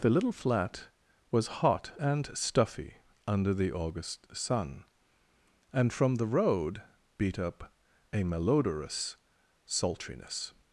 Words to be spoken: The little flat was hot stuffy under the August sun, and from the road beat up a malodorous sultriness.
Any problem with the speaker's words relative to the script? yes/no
yes